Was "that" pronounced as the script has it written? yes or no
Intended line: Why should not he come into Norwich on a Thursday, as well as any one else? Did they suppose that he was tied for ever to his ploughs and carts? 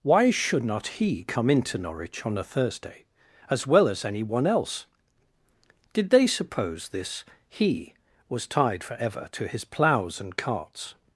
no